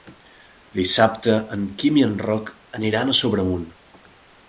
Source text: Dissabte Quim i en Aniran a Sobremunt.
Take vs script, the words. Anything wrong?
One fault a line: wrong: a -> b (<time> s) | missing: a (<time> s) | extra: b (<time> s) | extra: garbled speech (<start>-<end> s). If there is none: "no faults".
extra: en (1.6 s)
extra: Roc (2.2 s)